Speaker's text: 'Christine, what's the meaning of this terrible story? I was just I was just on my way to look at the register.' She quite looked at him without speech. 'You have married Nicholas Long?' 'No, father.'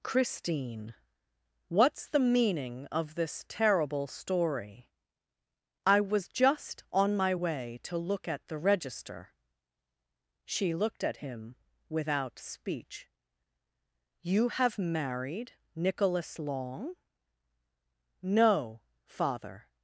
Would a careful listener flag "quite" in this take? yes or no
yes